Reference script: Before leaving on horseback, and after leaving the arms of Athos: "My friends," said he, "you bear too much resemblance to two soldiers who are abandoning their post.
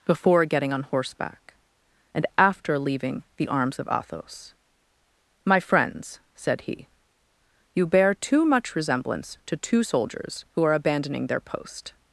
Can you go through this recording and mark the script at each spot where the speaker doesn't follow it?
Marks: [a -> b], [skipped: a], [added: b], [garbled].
Before [leaving -> getting] on horseback, and after leaving the arms of Athos: "My friends," said he, "you bear too much resemblance to two soldiers who are abandoning their post.